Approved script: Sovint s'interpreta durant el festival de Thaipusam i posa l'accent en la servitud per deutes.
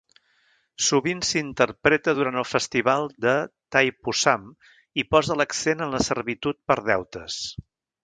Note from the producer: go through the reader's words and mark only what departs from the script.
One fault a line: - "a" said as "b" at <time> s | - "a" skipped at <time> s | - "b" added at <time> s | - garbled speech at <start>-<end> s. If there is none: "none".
none